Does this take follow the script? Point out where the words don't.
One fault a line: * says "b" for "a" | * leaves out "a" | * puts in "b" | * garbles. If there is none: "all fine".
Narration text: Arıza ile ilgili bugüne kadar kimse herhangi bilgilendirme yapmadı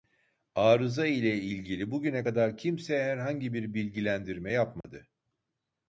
* puts in "bir"